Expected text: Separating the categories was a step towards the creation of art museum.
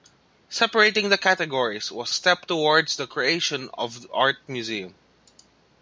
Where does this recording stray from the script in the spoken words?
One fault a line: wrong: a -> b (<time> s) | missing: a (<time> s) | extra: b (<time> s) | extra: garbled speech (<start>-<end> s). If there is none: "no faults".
no faults